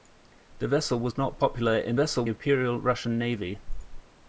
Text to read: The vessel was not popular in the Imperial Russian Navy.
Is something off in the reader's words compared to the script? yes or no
yes